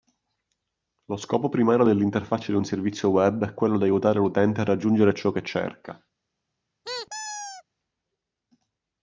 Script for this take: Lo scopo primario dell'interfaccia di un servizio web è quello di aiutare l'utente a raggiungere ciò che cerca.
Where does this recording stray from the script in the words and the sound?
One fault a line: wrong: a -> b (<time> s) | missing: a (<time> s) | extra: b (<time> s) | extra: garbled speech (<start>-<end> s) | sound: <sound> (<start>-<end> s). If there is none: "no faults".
sound: squeak (6.8-7.6 s)